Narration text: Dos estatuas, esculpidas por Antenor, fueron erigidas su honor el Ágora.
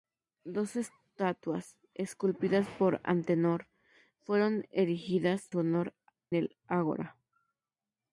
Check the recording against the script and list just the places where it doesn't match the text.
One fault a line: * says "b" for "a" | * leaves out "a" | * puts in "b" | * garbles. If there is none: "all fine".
all fine